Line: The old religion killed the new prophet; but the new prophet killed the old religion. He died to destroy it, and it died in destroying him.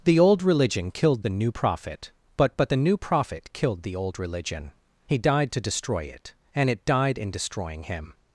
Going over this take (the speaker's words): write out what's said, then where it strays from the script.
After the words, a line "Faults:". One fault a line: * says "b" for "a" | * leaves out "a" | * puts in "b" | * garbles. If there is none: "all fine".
The old religion killed the new prophet; but but the new prophet killed the old religion. He died to destroy it, and it died in destroying him.
Faults:
* puts in "but"